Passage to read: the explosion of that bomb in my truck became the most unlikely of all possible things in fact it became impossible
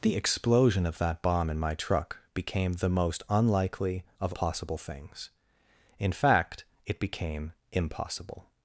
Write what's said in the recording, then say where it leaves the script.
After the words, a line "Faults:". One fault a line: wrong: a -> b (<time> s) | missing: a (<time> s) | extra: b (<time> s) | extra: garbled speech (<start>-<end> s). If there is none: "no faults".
the explosion of that bomb in my truck became the most unlikely of possible things in fact it became impossible
Faults:
missing: all (4.3 s)